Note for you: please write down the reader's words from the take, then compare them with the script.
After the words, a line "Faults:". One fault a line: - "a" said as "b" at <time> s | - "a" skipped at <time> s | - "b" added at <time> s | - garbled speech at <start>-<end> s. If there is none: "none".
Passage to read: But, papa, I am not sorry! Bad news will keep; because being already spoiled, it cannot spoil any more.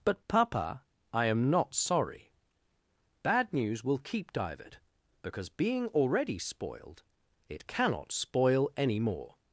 But, papa, I am not sorry! Bad news will keep; divert because being already spoiled, it cannot spoil any more.
Faults:
- "divert" added at 4.3 s